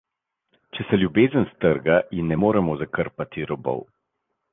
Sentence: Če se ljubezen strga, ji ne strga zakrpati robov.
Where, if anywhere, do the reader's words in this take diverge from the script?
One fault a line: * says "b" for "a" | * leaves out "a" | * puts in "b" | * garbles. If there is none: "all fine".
* says "moremo" for "strga"